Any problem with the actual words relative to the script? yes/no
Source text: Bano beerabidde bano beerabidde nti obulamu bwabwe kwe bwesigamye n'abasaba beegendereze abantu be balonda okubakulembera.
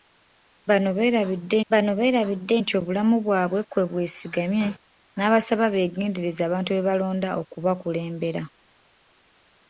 no